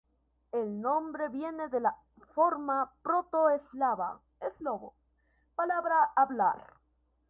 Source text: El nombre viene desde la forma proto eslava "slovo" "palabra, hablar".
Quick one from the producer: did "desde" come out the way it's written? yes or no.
no